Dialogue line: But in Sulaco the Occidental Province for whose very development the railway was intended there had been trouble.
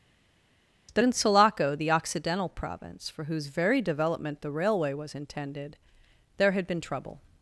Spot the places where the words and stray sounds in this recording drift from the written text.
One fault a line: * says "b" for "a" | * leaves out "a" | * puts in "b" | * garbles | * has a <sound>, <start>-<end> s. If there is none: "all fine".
* says "That" for "But"